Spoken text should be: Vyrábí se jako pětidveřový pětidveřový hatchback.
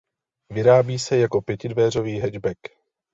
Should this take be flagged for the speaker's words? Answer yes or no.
yes